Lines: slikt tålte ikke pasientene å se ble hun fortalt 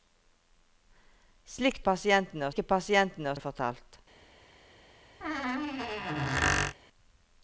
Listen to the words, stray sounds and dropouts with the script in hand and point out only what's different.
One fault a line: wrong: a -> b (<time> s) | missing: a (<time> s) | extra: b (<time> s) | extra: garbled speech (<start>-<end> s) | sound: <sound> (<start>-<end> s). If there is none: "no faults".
wrong: tålte -> pasientene (1.9 s)
missing: se ble (3.4 s)
sound: squeak (5.2-6.8 s)